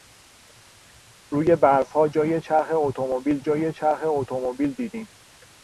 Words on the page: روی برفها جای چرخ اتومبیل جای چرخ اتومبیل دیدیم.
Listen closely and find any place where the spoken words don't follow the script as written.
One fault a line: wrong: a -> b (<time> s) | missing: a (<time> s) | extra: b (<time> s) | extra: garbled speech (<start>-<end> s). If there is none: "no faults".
no faults